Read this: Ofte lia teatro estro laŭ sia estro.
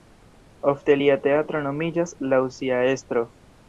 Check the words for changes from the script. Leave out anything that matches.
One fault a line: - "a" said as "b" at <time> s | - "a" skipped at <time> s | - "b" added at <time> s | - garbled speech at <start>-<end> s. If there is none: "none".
- "estro" said as "nomiĝas" at 1.7 s